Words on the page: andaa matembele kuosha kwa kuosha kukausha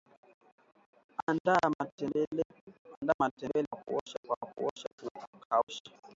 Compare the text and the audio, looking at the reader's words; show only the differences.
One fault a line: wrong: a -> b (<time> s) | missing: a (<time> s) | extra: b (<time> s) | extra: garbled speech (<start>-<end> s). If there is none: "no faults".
no faults